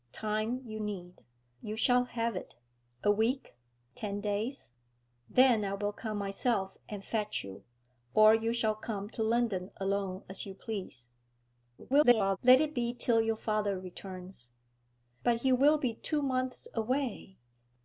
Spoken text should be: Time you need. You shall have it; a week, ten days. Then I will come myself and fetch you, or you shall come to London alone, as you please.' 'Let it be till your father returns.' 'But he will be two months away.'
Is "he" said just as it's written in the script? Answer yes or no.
yes